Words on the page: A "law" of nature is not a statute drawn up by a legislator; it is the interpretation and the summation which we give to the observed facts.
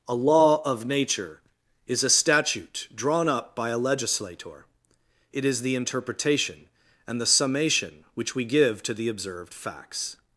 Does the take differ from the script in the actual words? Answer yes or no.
yes